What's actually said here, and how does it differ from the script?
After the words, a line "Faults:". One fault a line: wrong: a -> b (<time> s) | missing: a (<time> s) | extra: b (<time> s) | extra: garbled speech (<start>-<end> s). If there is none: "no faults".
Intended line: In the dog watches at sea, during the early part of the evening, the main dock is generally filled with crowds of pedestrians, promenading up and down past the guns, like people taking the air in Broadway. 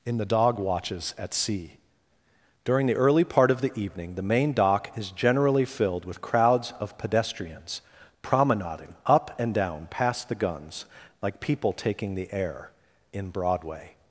In the dog watches at sea, during the early part of the evening, the main dock is generally filled with crowds of pedestrians, promenading up and down past the guns, like people taking the air in Broadway.
Faults:
no faults